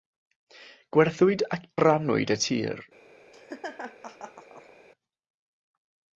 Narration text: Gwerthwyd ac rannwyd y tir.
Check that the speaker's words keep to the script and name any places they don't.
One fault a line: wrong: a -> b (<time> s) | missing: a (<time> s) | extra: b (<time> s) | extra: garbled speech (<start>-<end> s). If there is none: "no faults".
no faults